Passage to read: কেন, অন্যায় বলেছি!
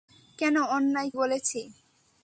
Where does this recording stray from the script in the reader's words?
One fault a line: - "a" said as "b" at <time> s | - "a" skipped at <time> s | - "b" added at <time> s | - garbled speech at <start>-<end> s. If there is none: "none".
none